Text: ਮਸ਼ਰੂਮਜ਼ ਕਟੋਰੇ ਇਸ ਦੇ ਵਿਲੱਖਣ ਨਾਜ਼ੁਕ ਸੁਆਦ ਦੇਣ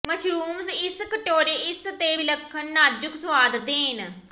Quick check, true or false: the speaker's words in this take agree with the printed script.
false